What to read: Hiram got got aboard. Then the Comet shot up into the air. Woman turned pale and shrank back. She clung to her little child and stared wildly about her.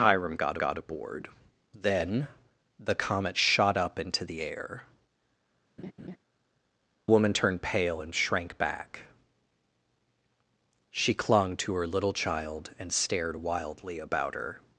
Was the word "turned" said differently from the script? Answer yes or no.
no